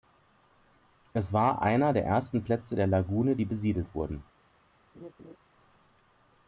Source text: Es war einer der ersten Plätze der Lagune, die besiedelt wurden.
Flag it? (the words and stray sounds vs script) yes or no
yes